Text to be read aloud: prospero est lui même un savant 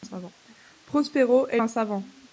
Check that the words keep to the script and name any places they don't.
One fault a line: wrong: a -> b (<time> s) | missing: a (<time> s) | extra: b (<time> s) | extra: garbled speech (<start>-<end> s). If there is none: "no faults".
missing: lui même (1.6 s)